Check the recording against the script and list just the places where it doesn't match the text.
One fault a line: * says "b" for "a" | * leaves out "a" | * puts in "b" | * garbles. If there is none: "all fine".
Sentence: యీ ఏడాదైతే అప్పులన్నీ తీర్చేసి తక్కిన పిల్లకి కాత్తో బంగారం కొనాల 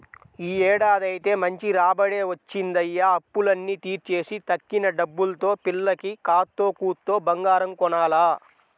* puts in "మంచి రాబడే వచ్చిందయ్య"
* puts in "డబ్బుల్తో"
* puts in "కూత్తో"